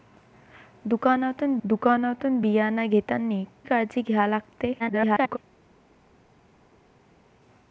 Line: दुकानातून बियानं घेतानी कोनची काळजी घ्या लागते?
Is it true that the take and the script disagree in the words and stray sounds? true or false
true